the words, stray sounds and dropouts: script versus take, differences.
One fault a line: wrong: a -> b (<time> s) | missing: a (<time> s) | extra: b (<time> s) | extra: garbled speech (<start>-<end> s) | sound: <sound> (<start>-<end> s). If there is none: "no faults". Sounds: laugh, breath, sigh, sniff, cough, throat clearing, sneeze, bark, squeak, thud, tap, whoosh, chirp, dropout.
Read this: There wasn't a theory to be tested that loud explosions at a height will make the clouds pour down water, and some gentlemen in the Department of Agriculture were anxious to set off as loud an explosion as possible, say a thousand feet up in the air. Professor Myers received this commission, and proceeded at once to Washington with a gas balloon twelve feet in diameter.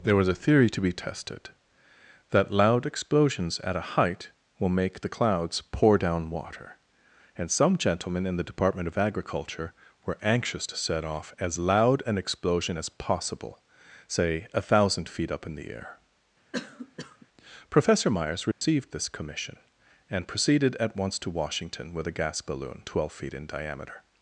wrong: wasn't -> was (0.1 s)
sound: cough (16.5-17.3 s)
sound: dropout (18.5-18.6 s)